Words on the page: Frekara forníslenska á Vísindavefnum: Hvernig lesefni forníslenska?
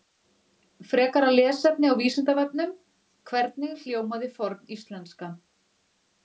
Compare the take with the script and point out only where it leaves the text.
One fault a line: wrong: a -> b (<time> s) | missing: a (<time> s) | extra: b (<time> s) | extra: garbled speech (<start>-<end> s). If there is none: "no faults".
wrong: forníslenska -> lesefni (1.3 s)
wrong: lesefni -> hljómaði (3.8 s)